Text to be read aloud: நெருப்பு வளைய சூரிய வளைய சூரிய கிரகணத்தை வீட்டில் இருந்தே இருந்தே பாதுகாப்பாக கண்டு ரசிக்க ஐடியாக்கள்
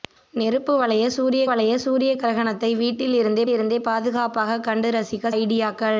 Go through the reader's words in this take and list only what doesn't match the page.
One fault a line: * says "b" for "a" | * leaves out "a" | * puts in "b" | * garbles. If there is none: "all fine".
all fine